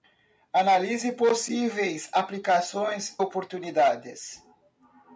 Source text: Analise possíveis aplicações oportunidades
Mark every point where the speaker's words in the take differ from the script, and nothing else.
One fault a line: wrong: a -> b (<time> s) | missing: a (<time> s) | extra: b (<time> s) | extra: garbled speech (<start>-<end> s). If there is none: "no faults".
no faults